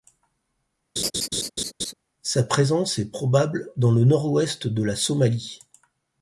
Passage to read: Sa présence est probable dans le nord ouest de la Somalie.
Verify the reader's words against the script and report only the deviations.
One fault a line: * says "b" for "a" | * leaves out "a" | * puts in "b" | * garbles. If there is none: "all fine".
all fine